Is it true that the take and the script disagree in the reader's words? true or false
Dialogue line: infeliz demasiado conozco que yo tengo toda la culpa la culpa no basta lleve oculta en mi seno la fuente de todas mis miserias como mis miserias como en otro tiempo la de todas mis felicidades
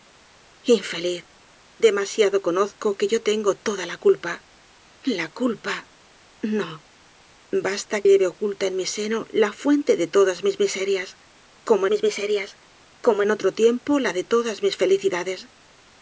false